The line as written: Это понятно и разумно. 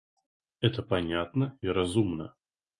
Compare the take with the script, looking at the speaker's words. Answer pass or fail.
pass